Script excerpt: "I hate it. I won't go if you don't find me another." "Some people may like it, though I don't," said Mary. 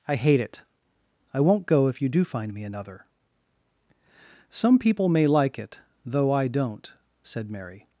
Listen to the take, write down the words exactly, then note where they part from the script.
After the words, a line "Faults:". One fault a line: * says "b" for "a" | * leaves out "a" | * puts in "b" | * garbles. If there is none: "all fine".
"I hate it. I won't go if you do find me another." "Some people may like it, though I don't," said Mary.
Faults:
* says "do" for "don't"